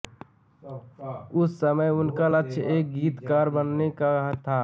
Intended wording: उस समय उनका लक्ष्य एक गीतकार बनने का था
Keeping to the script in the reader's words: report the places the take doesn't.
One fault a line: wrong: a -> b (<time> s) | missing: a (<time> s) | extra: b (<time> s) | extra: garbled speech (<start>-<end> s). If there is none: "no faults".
no faults